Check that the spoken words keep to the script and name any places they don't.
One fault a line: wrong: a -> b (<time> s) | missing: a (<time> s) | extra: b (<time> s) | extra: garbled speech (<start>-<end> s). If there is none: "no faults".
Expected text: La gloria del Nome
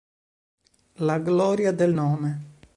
no faults